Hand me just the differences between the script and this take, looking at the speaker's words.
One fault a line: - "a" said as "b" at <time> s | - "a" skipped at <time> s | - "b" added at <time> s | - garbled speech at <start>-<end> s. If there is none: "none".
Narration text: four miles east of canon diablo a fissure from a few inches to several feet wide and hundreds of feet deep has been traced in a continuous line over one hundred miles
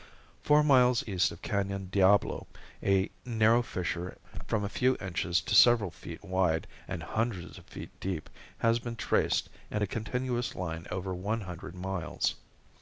- "narrow" added at 3.2 s